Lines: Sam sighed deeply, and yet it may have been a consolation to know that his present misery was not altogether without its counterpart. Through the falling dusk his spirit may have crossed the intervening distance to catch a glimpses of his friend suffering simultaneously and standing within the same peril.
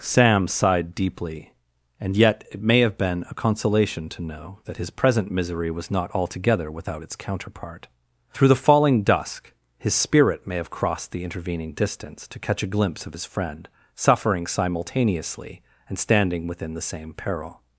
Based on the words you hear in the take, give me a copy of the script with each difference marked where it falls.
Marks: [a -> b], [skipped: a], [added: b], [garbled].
Sam sighed deeply, and yet it may have been a consolation to know that his present misery was not altogether without its counterpart. Through the falling dusk his spirit may have crossed the intervening distance to catch a [glimpses -> glimpse] of his friend suffering simultaneously and standing within the same peril.